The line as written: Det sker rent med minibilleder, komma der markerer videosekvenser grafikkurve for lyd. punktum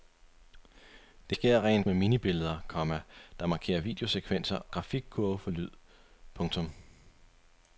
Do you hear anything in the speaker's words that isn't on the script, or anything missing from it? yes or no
no